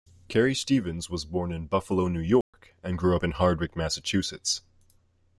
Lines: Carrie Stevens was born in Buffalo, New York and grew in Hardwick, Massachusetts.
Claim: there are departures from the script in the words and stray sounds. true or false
true